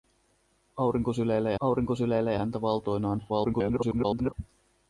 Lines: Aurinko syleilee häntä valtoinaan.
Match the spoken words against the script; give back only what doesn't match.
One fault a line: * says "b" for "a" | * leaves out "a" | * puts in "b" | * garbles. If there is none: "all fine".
* puts in "aurinko syleilee"
* garbles